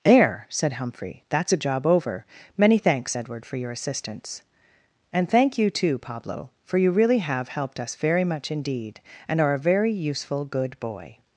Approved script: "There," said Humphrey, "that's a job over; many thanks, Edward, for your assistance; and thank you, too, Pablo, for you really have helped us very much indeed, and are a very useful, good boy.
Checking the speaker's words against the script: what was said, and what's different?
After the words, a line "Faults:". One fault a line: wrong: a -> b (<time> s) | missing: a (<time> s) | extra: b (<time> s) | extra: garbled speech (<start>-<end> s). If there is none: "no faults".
"There," said Humphrey, "that's a job over; many thanks, Edward, for your assistance; and thank you, too, Pablo, for you really have helped us very much indeed, and are a very useful, good boy.
Faults:
no faults